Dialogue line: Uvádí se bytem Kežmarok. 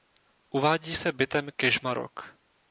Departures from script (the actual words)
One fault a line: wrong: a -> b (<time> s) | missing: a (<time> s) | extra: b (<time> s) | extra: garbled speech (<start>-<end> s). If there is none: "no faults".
no faults